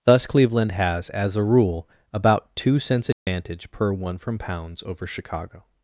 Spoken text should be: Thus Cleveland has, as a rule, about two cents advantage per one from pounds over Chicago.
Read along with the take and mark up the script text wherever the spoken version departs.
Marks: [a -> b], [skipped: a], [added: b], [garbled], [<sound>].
Thus Cleveland has, as a rule, about two cents advantage [dropout] per one from pounds over Chicago.